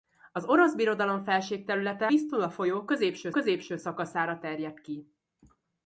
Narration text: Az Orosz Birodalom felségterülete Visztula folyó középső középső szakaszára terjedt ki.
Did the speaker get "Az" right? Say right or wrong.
right